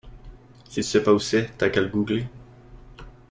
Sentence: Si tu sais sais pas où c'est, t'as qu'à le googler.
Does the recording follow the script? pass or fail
fail